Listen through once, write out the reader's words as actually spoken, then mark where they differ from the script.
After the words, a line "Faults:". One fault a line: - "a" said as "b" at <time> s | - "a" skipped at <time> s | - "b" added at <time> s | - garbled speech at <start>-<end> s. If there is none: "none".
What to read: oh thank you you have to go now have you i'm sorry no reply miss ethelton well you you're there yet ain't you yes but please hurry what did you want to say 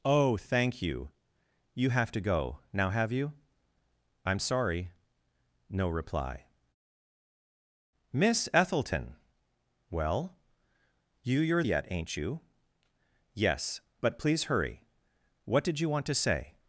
oh thank you you have to go now have you i'm sorry no reply miss ethelton well you you're yet ain't you yes but please hurry what did you want to say
Faults:
- "there" skipped at 11.6 s